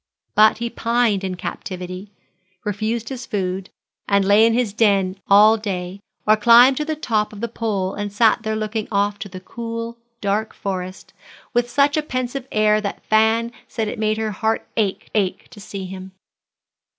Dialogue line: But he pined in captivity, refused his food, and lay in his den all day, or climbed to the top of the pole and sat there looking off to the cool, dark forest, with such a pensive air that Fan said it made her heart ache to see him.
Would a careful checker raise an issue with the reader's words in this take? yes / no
yes